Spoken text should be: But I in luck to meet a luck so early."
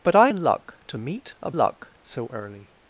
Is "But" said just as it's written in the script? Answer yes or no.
yes